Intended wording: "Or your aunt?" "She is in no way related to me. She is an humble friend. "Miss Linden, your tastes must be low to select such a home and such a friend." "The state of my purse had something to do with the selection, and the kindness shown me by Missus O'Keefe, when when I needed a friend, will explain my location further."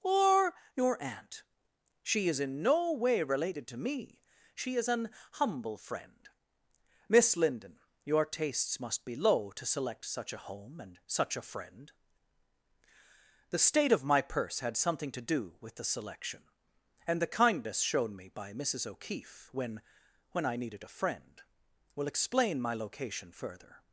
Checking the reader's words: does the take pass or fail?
pass